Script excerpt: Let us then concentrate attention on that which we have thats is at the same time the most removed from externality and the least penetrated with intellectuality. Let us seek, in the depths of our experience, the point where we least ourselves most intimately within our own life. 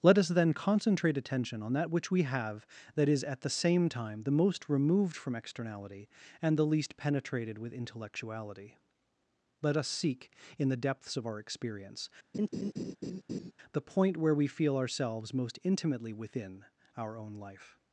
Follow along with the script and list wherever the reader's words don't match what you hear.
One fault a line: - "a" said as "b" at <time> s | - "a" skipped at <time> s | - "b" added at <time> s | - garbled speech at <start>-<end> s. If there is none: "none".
- "thats" said as "that" at 3.0 s
- "least" said as "feel" at 14.5 s